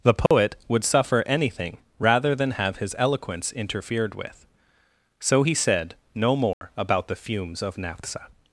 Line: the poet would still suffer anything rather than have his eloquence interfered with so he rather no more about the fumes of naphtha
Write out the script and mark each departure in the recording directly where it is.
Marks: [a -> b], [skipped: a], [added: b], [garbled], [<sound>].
the poet [dropout] would [skipped: still] suffer anything rather than have his eloquence interfered with so he [rather -> said] no more [dropout] about the fumes of naphtha